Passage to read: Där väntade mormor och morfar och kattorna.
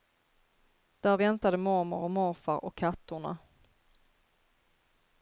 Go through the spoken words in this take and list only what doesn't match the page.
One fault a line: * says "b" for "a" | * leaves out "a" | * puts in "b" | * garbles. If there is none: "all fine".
all fine